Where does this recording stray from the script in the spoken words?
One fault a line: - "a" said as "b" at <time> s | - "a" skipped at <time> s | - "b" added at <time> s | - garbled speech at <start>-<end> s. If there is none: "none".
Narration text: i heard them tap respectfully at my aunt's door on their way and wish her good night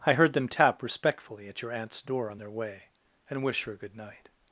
- "my" said as "your" at 1.6 s